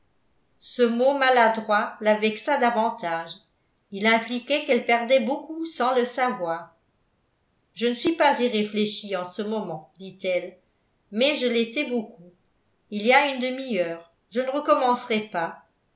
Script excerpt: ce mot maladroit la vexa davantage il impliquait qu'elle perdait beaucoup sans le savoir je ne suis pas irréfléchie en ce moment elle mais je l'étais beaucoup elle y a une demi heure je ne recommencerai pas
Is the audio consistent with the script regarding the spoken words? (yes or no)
no